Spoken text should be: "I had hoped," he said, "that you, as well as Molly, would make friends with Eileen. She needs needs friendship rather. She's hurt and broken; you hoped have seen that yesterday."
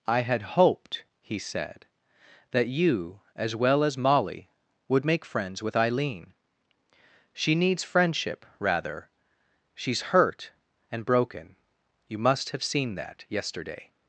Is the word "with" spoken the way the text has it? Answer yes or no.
yes